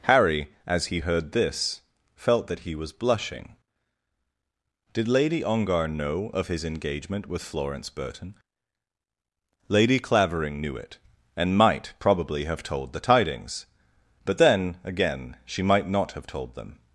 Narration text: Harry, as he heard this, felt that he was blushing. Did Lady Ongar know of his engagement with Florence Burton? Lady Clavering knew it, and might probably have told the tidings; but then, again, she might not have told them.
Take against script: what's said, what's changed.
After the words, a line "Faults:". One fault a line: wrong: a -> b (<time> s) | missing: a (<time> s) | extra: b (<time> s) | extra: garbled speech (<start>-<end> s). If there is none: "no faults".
Harry, as he heard this, felt that he was blushing. Did Lady Ongar know of his engagement with Florence Burton? Lady Clavering knew it, and might probably have told the tidings; but then, again, she might not have told them.
Faults:
no faults